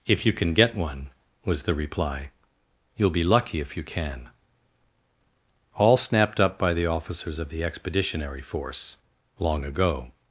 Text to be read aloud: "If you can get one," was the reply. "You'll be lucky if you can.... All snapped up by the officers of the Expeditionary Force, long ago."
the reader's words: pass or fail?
pass